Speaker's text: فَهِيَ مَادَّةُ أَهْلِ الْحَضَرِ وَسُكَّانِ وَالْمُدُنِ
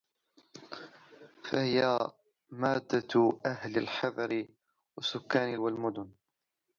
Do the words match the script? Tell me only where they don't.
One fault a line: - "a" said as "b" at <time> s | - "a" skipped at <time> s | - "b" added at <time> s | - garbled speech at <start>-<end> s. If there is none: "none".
none